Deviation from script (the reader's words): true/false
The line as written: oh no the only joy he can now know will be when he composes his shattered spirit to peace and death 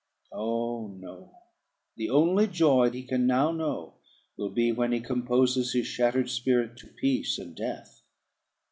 false